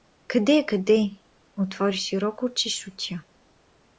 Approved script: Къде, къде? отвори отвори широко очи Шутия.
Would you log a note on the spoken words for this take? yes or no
yes